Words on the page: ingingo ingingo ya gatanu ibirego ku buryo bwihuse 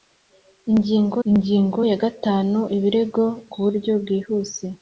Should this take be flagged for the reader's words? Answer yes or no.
no